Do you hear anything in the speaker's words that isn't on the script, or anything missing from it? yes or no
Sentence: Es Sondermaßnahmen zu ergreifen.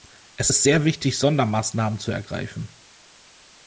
yes